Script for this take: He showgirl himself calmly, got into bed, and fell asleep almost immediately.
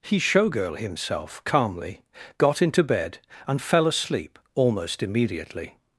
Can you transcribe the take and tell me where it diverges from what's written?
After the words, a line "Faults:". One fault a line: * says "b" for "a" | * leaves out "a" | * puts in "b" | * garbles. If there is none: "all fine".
He showgirl himself calmly, got into bed, and fell asleep almost immediately.
Faults:
all fine